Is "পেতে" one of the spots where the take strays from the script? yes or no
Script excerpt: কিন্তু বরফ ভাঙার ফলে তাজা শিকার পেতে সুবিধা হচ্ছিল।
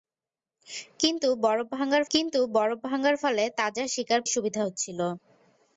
yes